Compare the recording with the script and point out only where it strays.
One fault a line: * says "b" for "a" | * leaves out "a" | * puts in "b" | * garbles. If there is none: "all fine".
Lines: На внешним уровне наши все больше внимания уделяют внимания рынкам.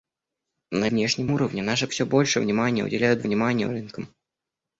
all fine